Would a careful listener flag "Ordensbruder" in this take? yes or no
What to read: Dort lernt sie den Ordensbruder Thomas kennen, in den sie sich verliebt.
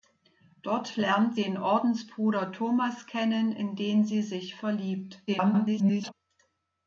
no